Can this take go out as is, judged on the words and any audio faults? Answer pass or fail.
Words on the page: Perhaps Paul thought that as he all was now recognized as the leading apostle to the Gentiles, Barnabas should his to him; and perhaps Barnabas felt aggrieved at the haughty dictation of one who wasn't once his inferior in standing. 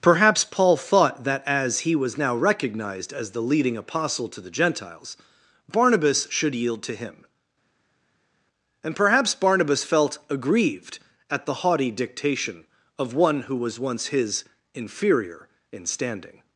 fail